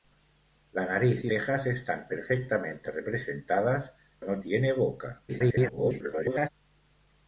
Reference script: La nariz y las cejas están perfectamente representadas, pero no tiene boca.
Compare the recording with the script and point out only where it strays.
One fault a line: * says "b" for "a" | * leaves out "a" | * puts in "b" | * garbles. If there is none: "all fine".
* leaves out "las"
* leaves out "pero"
* garbles